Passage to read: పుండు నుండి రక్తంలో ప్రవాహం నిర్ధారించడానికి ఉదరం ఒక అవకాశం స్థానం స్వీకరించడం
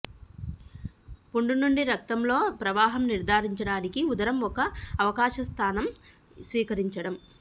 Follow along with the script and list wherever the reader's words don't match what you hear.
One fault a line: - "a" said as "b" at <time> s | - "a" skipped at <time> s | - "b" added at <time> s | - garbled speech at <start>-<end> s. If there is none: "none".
none